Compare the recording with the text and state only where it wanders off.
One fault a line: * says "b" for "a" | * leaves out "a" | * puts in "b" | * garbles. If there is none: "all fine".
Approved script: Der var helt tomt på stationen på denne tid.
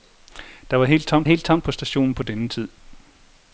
* puts in "helt tomt"